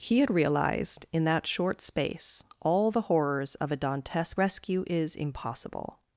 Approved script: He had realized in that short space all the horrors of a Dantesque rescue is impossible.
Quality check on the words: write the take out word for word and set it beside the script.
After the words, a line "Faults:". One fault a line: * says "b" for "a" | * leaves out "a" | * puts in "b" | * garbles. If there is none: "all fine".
He had realized in that short space all the horrors of a Dantesque rescue is impossible.
Faults:
all fine